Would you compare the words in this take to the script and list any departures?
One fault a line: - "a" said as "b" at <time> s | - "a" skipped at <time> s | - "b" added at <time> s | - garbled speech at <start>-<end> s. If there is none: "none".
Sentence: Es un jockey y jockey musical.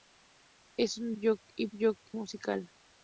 none